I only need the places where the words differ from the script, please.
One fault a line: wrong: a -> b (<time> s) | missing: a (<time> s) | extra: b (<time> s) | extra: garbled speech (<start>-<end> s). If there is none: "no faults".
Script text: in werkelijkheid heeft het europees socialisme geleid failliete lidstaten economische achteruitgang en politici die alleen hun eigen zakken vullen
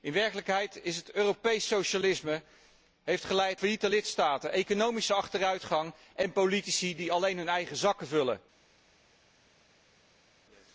no faults